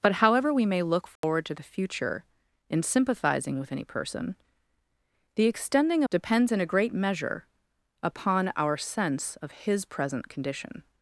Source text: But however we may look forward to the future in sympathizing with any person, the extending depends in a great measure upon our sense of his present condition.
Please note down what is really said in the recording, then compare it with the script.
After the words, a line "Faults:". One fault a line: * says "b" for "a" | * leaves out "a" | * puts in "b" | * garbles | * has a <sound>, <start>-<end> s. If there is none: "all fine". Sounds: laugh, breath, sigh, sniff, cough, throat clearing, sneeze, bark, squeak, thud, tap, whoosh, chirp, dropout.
But however we may look forward to the future in sympathizing with any person, the extending depends in a great measure upon our sense of his present condition.
Faults:
* has a dropout, 1.2-1.2 s